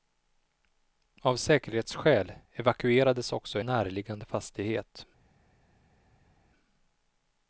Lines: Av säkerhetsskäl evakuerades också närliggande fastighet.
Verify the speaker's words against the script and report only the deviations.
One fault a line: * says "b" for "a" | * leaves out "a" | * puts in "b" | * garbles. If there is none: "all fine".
all fine